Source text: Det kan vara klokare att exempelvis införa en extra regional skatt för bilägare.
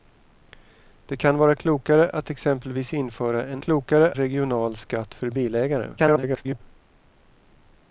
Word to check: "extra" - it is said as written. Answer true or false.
false